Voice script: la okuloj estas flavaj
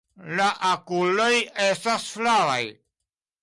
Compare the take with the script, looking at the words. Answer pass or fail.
pass